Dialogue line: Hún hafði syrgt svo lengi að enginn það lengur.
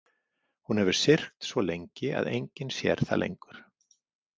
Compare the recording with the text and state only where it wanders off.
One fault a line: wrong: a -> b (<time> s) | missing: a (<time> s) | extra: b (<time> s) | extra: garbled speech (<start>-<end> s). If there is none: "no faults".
wrong: hafði -> hefur (0.8 s)
extra: sér (2.8 s)